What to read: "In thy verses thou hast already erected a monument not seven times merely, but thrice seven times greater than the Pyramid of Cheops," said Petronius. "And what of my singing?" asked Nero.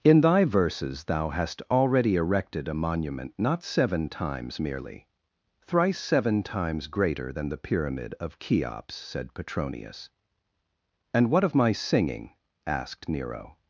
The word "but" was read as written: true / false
false